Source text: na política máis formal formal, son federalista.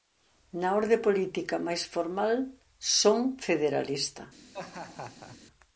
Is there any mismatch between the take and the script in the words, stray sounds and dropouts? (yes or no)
yes